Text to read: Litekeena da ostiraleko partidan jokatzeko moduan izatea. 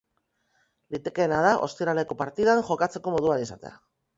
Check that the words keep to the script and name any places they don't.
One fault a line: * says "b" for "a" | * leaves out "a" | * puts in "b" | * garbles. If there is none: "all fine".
all fine